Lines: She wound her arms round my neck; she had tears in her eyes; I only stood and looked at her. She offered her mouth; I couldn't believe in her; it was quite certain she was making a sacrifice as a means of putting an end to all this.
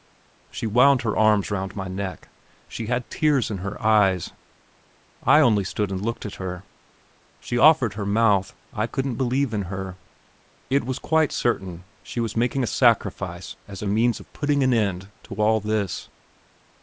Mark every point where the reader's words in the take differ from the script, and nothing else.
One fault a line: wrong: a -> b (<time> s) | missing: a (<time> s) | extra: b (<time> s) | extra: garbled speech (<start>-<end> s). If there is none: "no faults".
no faults